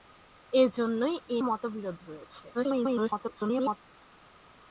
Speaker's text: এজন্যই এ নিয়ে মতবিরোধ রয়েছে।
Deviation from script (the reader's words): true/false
true